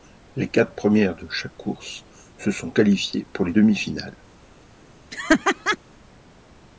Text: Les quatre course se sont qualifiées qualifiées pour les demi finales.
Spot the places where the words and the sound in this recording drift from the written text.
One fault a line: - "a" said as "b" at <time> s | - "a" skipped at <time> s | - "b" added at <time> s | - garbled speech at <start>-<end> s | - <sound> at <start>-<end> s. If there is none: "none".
- "premières de chaque" added at 0.7 s
- "qualifiées" skipped at 3.3 s
- laugh at 5.1-5.8 s